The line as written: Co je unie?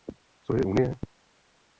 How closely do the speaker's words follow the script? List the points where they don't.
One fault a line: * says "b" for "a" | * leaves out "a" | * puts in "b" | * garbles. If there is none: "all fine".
all fine